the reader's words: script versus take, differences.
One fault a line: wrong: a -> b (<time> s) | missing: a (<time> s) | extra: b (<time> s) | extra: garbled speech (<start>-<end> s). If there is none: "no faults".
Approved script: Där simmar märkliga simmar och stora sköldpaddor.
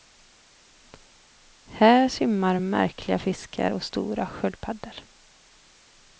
wrong: Där -> Här (1.6 s)
wrong: simmar -> fiskar (3.2 s)